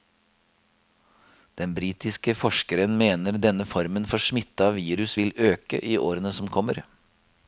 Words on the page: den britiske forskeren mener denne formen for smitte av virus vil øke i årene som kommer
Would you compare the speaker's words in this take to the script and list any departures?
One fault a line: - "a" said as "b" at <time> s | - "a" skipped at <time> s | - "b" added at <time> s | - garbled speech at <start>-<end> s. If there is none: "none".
none